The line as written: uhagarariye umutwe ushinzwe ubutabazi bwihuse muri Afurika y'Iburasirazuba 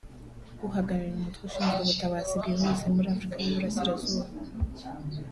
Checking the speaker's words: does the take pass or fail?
pass